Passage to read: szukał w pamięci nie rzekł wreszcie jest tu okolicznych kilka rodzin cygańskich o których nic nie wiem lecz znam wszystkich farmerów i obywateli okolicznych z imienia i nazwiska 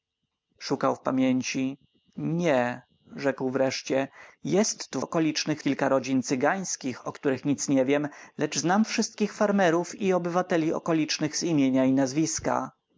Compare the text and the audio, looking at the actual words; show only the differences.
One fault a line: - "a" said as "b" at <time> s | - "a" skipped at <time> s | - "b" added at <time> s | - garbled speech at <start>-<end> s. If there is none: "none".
none